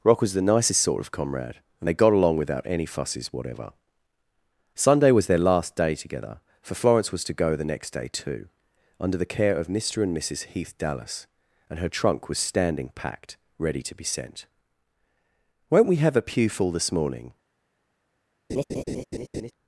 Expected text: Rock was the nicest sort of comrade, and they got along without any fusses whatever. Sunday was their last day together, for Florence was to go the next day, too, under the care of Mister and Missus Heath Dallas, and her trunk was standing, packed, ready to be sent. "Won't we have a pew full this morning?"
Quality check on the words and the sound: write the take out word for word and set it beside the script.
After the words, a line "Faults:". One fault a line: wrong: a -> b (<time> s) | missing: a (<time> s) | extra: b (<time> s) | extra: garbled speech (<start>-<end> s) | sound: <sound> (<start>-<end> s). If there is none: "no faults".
Rock was the nicest sort of comrade, and they got along without any fusses whatever. Sunday was their last day together, for Florence was to go the next day, too, under the care of Mister and Missus Heath Dallas, and her trunk was standing, packed, ready to be sent. "Won't we have a pew full this morning?"
Faults:
sound: laugh (18.5-19.5 s)